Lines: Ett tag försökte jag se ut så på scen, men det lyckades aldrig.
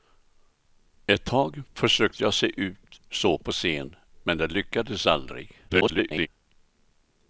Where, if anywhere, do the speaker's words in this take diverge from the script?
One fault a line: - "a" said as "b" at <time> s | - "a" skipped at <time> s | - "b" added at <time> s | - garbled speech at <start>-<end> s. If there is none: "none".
- garbled speech at 5.7-6.3 s